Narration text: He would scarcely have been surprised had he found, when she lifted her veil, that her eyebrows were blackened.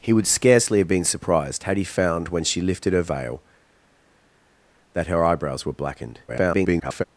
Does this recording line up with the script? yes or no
no